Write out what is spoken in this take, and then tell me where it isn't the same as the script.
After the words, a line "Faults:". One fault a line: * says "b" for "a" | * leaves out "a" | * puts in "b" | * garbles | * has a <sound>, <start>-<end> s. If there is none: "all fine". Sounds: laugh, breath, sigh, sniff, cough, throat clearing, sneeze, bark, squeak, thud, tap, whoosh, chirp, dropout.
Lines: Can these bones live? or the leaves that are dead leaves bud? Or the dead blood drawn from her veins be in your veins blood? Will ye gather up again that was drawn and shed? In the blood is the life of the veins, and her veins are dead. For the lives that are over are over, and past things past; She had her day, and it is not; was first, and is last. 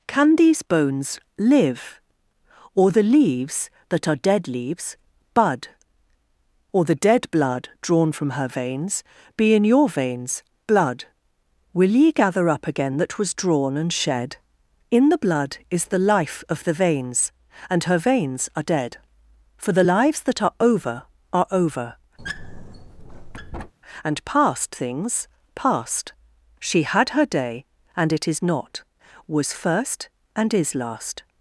Can these bones live? or the leaves that are dead leaves bud? Or the dead blood drawn from her veins be in your veins blood? Will ye gather up again that was drawn and shed? In the blood is the life of the veins, and her veins are dead. For the lives that are over are over, and past things past; She had her day, and it is not; was first, and is last.
Faults:
* has a squeak, 22.2-23.7 s